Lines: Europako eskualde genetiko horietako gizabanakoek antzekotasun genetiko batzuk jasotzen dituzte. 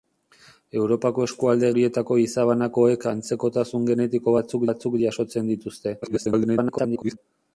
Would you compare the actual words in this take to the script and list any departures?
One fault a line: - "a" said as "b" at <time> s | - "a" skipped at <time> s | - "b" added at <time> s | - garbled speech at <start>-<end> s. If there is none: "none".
- "genetiko" skipped at 1.7 s
- "batzuk" added at 4.7 s
- garbled speech at 6.0-7.2 s